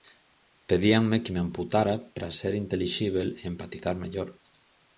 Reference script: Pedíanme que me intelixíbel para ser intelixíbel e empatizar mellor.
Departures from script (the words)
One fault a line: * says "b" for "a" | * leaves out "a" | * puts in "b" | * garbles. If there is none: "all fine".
* says "amputara" for "intelixíbel"